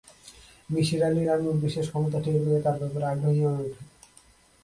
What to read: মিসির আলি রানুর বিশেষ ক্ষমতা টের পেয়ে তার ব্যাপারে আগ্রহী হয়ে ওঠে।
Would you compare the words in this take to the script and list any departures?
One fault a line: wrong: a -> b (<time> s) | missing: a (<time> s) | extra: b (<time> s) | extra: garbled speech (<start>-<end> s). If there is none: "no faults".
no faults